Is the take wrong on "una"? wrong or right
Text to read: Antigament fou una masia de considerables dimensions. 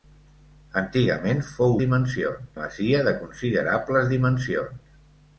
wrong